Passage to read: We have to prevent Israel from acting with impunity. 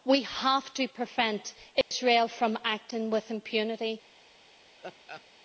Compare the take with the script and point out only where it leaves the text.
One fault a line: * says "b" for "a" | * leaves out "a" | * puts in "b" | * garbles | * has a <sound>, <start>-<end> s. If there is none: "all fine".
* has a dropout, 1.8-1.9 s
* has a laugh, 4.8-5.2 s